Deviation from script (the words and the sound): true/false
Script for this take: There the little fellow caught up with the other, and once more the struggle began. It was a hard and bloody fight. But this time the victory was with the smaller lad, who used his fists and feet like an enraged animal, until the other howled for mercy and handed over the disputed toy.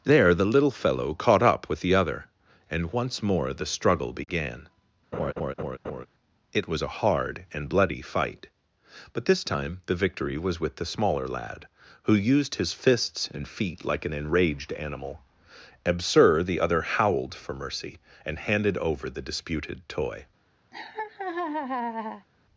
true